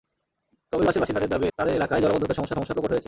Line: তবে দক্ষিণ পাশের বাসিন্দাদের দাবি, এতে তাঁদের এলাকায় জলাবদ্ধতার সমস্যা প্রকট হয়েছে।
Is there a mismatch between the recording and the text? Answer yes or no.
yes